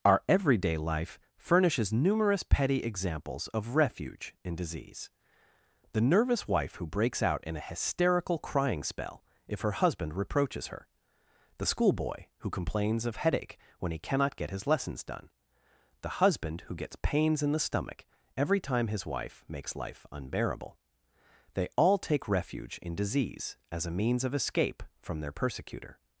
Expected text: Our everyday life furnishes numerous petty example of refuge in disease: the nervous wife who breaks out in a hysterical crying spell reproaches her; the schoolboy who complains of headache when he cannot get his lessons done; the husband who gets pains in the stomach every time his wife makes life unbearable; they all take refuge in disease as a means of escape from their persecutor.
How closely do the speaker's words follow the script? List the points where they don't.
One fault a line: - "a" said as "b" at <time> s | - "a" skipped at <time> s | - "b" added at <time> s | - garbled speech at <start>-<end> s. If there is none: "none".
- "example" said as "examples" at 2.8 s
- "if her husband" added at 9.5 s